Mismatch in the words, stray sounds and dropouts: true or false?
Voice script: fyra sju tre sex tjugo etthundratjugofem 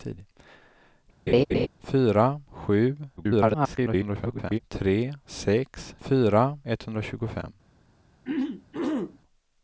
true